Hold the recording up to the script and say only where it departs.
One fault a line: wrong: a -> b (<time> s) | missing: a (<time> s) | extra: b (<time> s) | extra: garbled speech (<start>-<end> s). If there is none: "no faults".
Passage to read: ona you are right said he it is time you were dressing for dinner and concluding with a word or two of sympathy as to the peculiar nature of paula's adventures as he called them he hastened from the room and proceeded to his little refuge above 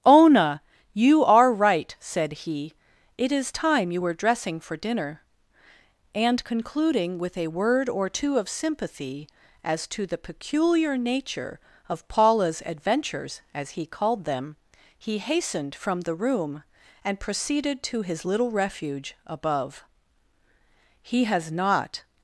extra: he has not (21.0 s)